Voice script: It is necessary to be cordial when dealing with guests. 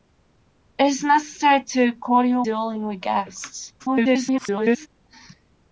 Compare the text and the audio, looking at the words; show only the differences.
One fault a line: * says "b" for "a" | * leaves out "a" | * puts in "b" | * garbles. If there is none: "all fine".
* leaves out "when"
* garbles